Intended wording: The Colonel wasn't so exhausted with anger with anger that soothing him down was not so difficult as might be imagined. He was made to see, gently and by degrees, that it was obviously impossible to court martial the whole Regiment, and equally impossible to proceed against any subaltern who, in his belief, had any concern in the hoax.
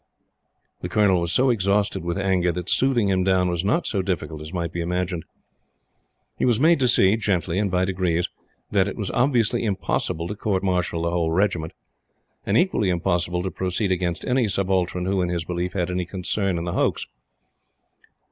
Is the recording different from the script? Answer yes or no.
yes